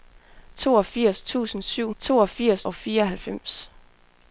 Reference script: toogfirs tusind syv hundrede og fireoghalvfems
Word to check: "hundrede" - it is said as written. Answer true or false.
false